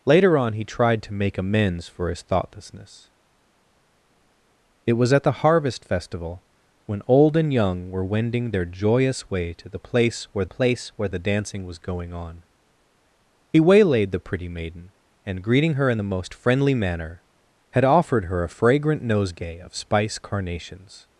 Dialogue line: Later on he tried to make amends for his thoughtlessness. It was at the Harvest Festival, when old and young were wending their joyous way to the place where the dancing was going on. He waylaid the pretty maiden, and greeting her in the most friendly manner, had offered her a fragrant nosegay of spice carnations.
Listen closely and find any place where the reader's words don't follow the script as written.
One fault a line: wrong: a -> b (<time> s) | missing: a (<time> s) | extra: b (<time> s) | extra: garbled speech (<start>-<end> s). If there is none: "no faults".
extra: place where (10.5 s)